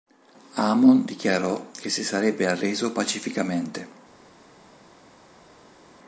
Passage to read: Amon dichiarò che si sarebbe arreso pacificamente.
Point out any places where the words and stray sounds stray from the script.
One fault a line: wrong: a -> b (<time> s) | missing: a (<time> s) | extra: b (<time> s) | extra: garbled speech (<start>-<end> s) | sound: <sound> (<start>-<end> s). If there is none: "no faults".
no faults